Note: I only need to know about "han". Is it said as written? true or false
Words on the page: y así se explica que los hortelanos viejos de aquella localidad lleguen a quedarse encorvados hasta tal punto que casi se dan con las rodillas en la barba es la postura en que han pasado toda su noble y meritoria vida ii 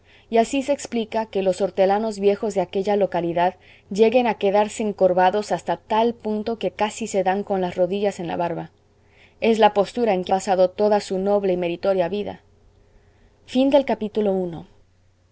false